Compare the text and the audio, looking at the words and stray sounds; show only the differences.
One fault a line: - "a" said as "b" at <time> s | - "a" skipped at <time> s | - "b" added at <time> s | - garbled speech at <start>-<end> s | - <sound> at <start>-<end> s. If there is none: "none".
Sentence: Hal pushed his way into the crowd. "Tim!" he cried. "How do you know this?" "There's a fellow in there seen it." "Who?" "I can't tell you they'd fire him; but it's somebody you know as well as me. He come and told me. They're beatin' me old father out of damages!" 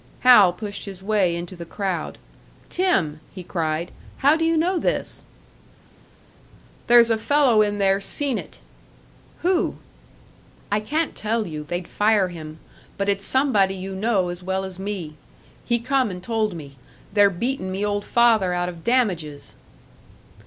none